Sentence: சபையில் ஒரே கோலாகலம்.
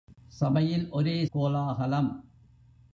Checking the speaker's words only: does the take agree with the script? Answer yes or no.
yes